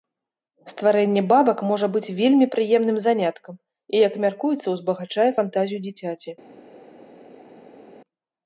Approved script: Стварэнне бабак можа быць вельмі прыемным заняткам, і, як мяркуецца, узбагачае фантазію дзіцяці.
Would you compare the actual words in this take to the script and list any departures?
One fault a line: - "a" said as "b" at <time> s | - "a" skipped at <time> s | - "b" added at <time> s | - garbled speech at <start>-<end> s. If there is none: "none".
none